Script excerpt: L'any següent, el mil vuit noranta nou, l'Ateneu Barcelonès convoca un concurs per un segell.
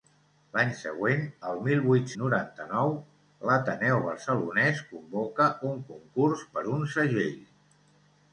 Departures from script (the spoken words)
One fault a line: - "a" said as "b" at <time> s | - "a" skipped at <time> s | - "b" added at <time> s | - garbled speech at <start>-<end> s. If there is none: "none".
none